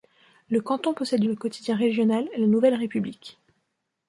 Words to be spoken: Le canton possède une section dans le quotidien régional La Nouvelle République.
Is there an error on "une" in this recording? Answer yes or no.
yes